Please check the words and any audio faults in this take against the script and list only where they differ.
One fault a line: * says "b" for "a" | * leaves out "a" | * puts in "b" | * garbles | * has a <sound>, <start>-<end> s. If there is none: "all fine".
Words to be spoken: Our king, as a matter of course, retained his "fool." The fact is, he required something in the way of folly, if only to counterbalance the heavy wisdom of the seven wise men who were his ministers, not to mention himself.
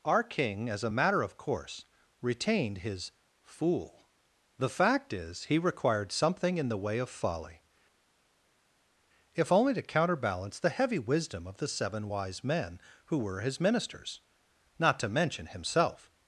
all fine